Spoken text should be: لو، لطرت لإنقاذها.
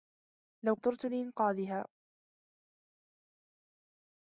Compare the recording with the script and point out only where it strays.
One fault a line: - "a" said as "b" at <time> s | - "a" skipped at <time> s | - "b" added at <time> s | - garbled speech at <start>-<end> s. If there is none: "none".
none